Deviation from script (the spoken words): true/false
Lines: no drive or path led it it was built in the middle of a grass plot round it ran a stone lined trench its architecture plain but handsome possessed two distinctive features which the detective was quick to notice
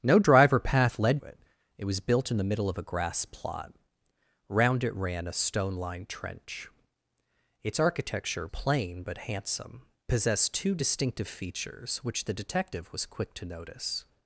false